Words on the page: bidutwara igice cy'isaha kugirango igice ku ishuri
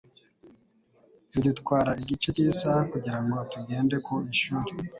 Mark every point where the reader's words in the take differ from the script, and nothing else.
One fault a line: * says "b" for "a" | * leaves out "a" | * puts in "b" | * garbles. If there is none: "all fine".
* says "tugende" for "igice"